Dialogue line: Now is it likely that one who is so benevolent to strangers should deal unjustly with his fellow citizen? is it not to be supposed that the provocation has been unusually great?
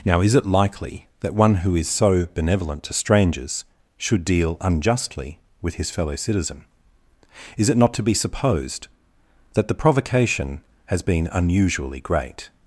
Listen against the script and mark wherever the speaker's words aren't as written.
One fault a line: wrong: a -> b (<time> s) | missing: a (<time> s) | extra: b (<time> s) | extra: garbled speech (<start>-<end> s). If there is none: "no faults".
no faults